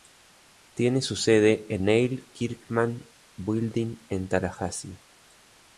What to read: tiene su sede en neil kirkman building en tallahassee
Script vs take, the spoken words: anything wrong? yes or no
no